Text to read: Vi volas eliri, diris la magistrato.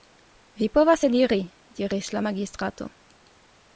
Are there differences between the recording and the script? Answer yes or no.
yes